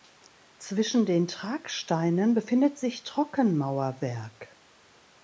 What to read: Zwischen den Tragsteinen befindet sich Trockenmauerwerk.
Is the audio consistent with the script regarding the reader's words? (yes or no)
yes